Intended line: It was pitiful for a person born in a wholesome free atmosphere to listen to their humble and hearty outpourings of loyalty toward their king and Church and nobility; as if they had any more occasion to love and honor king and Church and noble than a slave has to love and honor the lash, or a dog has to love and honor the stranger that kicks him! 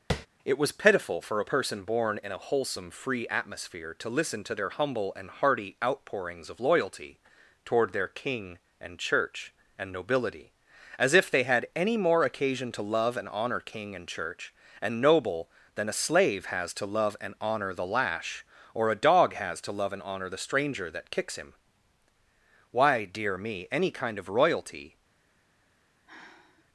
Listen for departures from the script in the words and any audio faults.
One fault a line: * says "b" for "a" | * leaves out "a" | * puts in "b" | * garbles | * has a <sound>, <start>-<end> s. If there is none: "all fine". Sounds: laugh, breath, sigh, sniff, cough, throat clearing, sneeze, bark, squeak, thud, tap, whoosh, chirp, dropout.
* has a tap, 0.1-0.3 s
* puts in "Why dear me any kind of royalty"
* has a sigh, 26.1-26.7 s